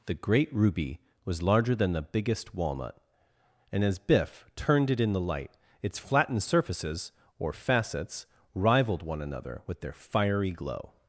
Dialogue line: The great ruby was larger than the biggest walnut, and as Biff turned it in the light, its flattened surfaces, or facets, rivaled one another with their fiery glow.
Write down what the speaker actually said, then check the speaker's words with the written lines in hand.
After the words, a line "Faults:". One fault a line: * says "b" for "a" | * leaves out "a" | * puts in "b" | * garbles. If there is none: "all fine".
The great ruby was larger than the biggest walnut, and as Biff turned it in the light, its flattened surfaces, or facets, rivaled one another with their fiery glow.
Faults:
all fine